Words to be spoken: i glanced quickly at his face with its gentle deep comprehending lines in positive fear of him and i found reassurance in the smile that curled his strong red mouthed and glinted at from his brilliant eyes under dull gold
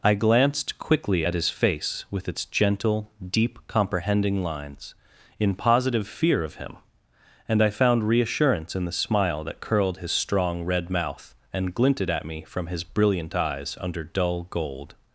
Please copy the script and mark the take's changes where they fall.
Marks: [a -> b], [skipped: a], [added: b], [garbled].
i glanced quickly at his face with its gentle deep comprehending lines in positive fear of him and i found reassurance in the smile that curled his strong red [mouthed -> mouth] and glinted at [added: me] from his brilliant eyes under dull gold